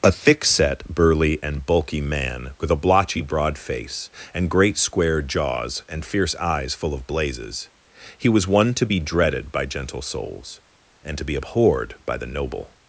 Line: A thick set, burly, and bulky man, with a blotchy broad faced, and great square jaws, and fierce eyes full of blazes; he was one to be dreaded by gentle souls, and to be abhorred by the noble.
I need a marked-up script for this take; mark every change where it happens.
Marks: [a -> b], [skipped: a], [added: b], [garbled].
A thick set, burly, and bulky man, with a blotchy broad [faced, -> face] and great square jaws, and fierce eyes full of blazes; he was one to be dreaded by gentle souls, and to be abhorred by the noble.